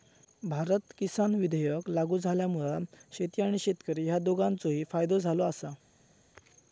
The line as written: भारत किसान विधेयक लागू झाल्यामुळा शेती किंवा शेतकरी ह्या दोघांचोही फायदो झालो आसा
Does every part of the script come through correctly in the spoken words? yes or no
no